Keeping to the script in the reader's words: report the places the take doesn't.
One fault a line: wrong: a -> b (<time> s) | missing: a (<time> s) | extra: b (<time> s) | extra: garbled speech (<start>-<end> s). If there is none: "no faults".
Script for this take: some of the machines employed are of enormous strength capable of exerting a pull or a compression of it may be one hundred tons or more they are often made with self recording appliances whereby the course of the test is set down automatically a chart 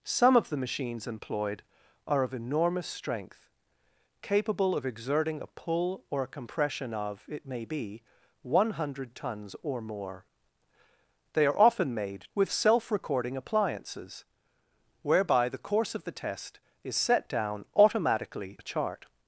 no faults